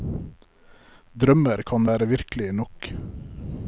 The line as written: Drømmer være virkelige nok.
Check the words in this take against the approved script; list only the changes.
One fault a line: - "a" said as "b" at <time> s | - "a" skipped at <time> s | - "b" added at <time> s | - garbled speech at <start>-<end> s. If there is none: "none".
- "kan" added at 1.7 s